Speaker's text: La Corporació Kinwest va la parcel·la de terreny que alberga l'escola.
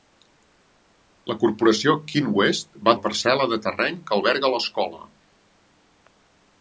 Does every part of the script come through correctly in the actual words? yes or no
yes